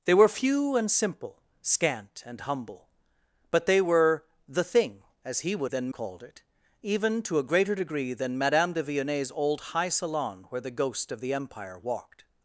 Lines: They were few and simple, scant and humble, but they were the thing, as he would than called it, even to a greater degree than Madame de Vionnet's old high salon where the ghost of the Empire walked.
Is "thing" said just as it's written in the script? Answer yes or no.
yes